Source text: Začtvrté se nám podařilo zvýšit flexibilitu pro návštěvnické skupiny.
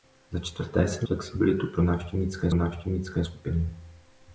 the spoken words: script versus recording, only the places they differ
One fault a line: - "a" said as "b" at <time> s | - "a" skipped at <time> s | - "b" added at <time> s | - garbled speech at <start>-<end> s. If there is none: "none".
- "nám podařilo zvýšit" skipped at 1.1 s
- "návštěvnické" added at 2.5 s